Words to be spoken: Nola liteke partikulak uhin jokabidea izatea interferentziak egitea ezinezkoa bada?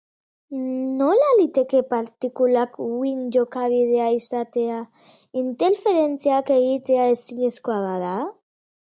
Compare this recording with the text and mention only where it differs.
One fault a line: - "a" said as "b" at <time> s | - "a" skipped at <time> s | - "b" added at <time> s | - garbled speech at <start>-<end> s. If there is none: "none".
none